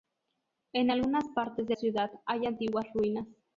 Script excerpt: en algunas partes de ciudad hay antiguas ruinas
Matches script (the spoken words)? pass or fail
pass